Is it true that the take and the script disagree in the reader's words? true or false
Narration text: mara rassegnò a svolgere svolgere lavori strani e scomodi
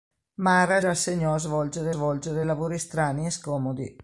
false